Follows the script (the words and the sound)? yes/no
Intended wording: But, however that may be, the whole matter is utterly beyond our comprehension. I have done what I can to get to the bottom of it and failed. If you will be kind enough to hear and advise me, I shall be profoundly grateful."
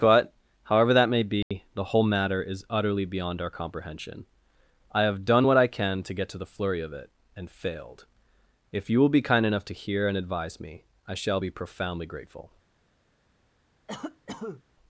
no